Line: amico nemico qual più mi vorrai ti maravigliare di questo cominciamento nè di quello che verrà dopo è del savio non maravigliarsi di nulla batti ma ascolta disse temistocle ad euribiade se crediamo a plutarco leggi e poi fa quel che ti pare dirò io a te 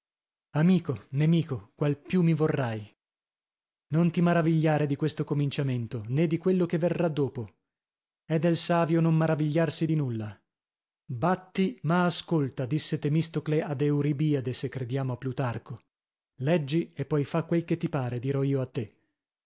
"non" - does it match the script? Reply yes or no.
yes